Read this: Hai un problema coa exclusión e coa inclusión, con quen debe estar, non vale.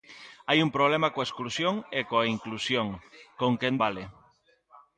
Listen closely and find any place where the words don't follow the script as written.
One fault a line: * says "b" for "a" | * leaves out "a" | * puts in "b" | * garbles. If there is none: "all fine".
* leaves out "debe estar non"